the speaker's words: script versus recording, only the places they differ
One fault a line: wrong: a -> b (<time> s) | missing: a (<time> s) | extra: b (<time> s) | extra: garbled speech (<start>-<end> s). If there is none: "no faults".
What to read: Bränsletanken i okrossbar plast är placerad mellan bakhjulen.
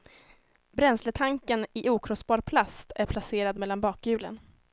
no faults